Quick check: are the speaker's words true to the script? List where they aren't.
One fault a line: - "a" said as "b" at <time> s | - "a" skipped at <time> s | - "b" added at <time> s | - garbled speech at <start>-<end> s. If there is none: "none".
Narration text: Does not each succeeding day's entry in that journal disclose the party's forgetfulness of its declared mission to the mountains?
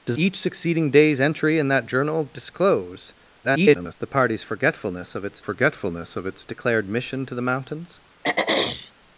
- "not" skipped at 0.2 s
- garbled speech at 3.4-3.9 s
- "forgetfulness of its" added at 5.4 s